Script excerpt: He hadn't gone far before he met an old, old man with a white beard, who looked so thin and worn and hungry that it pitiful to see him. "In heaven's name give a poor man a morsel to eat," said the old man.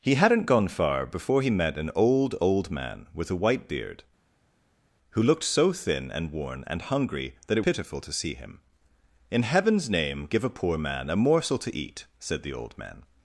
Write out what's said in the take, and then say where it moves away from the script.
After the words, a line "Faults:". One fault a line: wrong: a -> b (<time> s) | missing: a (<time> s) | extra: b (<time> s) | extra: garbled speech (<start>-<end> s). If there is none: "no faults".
He hadn't gone far before he met an old, old man with a white beard, who looked so thin and worn and hungry that it pitiful to see him. "In heaven's name give a poor man a morsel to eat," said the old man.
Faults:
no faults